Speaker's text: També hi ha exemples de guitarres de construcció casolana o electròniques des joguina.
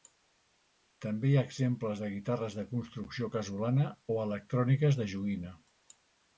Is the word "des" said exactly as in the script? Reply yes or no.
no